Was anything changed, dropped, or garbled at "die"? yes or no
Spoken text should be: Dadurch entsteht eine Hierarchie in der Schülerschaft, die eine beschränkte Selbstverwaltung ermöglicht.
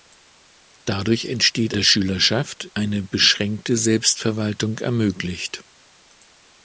yes